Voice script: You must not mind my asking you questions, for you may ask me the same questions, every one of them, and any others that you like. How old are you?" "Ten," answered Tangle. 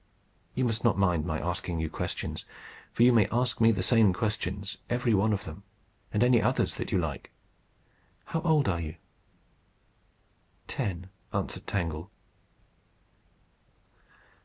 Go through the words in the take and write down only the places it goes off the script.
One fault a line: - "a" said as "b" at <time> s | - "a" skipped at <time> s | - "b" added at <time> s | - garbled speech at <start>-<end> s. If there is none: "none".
none